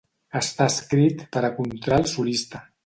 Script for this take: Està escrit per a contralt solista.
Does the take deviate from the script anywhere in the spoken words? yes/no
no